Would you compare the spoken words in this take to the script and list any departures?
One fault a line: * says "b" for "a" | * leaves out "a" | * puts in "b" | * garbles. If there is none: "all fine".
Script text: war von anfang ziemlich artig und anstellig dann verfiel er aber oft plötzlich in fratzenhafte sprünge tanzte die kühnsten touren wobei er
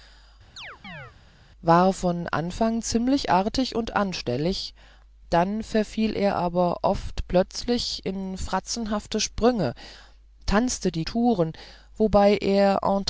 * leaves out "kühnsten"